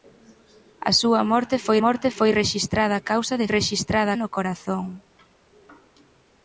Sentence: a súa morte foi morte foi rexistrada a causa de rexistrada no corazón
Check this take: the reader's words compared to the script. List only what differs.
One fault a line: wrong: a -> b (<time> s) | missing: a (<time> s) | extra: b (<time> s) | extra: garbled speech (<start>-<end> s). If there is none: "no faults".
no faults